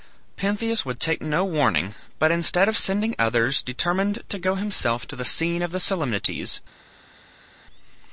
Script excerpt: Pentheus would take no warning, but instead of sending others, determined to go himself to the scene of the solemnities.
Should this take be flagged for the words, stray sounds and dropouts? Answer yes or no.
no